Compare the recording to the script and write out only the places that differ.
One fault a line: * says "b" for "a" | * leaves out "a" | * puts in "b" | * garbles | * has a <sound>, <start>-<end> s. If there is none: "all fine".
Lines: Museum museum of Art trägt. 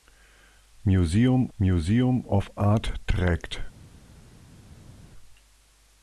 all fine